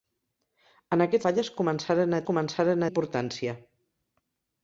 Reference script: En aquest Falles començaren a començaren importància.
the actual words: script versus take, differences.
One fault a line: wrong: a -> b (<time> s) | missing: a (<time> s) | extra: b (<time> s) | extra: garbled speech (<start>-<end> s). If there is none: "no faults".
no faults